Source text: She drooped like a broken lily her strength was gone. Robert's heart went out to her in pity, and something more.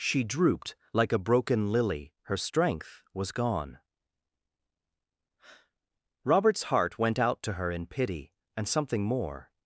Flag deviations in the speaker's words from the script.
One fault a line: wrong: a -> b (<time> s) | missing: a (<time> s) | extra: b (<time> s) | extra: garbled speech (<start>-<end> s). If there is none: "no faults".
no faults